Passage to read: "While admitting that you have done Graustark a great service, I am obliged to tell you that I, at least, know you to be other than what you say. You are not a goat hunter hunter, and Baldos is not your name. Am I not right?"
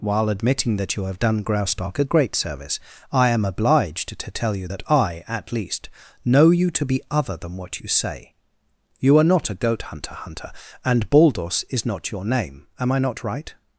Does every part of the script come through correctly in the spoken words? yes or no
yes